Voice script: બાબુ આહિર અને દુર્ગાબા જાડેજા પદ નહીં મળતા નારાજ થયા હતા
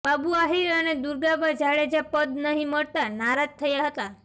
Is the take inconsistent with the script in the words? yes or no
no